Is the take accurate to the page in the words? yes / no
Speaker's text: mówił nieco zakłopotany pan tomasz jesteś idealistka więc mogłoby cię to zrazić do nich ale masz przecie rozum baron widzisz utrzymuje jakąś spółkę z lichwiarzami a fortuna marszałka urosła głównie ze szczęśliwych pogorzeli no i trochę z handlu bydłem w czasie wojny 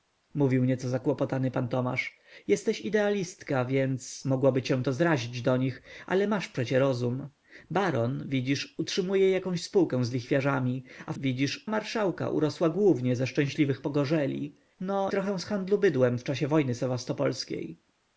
no